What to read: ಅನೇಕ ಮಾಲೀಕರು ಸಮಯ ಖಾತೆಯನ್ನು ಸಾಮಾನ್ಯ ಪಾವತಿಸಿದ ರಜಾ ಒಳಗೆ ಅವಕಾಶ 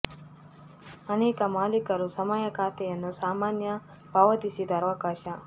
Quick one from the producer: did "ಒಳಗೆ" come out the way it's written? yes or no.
no